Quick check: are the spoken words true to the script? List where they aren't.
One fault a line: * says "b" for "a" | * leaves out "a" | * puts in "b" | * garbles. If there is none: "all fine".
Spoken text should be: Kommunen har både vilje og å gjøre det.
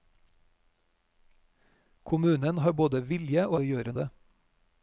all fine